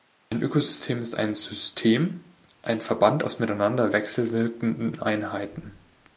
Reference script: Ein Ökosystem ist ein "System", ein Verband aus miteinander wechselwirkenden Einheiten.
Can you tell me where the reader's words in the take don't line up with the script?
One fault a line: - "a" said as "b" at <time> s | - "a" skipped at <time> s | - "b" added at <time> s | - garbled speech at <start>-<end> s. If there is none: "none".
none